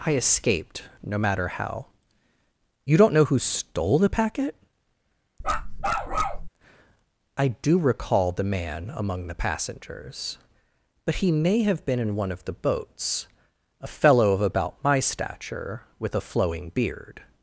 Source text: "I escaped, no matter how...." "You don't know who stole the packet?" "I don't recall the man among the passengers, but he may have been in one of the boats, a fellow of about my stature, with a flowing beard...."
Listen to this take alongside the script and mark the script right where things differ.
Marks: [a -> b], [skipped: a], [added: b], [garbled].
"I escaped, no matter how...." "You don't know who stole the packet?" "I [don't -> do] recall the man among the passengers, but he may have been in one of the boats, a fellow of about my stature, with a flowing beard...."